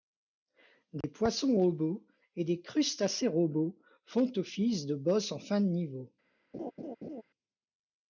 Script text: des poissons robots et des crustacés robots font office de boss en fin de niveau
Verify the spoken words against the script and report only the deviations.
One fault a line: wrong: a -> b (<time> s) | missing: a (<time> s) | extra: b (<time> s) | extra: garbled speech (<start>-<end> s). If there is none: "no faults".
no faults